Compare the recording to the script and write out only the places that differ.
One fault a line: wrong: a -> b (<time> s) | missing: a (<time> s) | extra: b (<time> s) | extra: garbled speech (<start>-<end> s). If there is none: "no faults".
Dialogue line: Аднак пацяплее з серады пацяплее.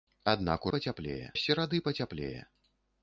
no faults